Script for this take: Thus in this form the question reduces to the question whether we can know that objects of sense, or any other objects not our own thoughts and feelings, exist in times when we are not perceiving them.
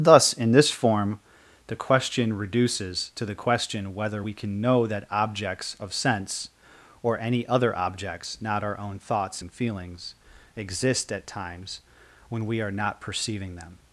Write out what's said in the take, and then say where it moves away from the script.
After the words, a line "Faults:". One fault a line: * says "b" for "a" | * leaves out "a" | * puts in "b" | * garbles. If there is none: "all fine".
Thus in this form the question reduces to the question whether we can know that objects of sense, or any other objects not our own thoughts and feelings, exist at times when we are not perceiving them.
Faults:
* says "at" for "in"